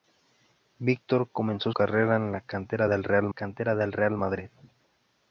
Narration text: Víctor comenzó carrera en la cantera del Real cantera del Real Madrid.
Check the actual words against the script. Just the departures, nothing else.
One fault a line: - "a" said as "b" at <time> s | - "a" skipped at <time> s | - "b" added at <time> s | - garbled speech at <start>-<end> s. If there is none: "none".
none